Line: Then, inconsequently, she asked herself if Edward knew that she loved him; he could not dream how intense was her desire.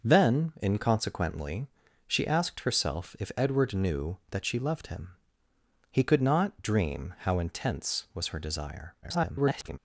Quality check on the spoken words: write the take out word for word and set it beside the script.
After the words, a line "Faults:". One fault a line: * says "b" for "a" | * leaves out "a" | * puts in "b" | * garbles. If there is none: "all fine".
Then, inconsequently, she asked herself if Edward knew that she loved him; he could not dream how intense was her desire. [garbled]
Faults:
* garbles